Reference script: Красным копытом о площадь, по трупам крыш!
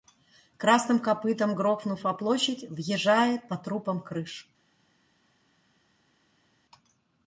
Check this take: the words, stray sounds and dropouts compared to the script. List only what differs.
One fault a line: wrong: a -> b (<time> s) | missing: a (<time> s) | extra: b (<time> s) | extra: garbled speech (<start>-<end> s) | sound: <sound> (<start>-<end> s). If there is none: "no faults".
extra: грохнув (1.5 s)
extra: въезжает (2.7 s)